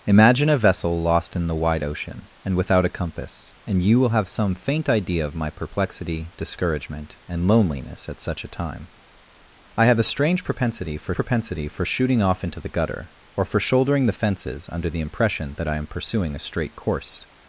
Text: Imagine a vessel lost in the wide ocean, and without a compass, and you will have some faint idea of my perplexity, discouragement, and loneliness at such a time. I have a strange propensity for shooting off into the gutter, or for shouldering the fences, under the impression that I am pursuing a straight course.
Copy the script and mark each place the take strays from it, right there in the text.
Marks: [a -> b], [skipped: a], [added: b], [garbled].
Imagine a vessel lost in the wide ocean, and without a compass, and you will have some faint idea of my perplexity, discouragement, and loneliness at such a time. I have a strange propensity for [added: propensity for] shooting off into the gutter, or for shouldering the fences, under the impression that I am pursuing a straight course.